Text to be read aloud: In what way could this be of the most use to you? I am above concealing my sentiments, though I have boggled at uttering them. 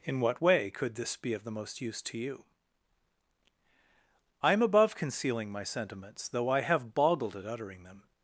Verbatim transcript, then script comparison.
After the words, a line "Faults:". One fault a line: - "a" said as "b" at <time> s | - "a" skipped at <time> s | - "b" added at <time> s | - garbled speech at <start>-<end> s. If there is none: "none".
In what way could this be of the most use to you? I am above concealing my sentiments, though I have boggled at uttering them.
Faults:
none